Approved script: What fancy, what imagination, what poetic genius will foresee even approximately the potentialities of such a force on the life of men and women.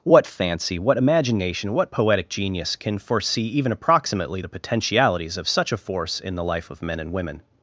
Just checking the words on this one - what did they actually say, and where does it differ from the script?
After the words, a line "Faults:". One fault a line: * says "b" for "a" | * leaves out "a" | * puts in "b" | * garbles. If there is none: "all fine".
What fancy, what imagination, what poetic genius can foresee even approximately the potentialities of such a force in the life of men and women.
Faults:
* says "can" for "will"
* says "in" for "on"